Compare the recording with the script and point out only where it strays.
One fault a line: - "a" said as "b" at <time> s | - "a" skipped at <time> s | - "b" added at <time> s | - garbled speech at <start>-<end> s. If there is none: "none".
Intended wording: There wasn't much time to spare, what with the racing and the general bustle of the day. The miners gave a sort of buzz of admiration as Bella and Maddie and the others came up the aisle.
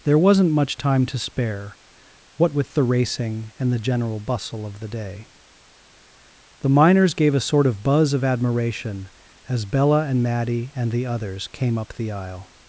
none